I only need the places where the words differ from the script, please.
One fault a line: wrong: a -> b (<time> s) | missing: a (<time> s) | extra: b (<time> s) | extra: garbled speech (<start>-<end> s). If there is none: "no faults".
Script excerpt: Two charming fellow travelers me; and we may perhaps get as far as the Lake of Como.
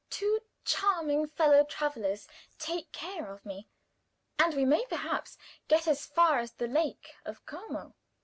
extra: take care of (2.6 s)